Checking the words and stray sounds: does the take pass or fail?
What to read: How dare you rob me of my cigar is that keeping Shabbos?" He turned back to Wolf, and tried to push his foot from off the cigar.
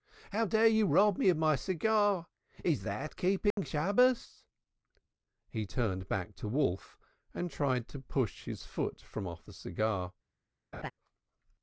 fail